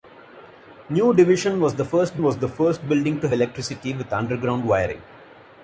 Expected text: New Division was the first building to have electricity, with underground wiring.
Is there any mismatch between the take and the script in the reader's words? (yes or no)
yes